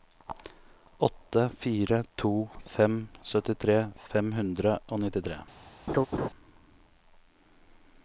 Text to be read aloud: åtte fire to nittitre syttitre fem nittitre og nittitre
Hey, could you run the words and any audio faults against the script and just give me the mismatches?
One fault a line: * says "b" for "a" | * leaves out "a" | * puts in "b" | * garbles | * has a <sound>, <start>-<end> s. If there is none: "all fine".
* says "fem" for "nittitre"
* says "hundre" for "nittitre"
* has a laugh, 5.9-6.3 s